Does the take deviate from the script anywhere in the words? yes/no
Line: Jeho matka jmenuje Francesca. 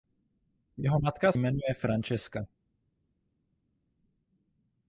no